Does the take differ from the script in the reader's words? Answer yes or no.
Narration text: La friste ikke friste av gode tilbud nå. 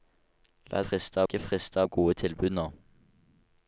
no